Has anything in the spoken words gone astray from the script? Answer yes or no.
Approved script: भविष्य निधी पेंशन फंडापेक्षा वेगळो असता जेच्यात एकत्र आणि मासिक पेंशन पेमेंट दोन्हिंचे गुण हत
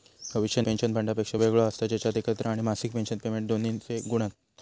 yes